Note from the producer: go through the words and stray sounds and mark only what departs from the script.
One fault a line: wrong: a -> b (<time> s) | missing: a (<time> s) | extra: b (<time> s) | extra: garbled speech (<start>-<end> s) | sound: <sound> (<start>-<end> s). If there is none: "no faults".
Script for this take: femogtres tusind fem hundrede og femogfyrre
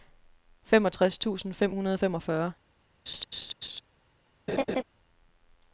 sound: laugh (3.1-3.8 s)
sound: laugh (4.5-4.8 s)